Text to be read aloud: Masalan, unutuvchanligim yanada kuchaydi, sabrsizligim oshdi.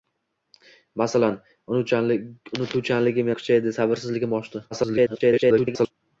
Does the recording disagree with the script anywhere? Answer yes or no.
yes